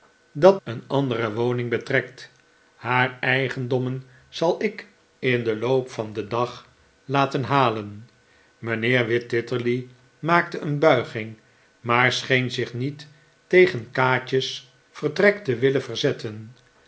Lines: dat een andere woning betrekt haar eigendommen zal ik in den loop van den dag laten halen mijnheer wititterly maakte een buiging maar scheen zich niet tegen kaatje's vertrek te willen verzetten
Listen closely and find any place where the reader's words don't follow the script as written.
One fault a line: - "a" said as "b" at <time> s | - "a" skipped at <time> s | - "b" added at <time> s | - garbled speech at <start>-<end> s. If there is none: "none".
none